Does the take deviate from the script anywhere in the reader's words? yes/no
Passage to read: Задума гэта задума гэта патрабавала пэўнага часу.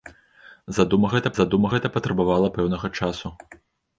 no